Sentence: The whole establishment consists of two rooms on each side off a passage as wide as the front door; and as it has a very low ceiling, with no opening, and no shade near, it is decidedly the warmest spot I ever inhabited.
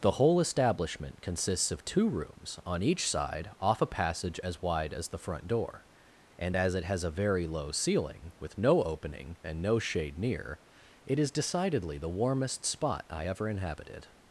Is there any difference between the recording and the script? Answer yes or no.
no